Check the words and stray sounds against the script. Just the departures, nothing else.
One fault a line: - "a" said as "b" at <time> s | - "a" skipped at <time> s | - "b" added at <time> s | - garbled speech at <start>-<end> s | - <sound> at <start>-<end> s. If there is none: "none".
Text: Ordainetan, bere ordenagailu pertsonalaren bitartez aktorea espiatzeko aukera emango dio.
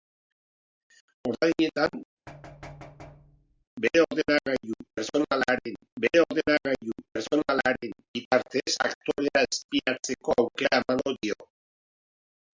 - thud at 2.3-3.6 s
- "bere ordenagailu pertsonalaren" added at 6.0 s